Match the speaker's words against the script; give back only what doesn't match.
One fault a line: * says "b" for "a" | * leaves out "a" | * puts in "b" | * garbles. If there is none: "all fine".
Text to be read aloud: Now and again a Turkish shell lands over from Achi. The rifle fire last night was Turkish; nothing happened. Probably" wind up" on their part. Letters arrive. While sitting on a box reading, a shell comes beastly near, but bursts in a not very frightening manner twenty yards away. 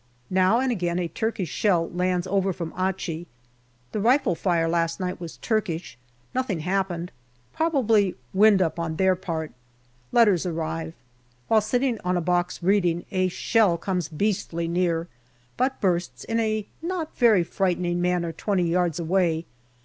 all fine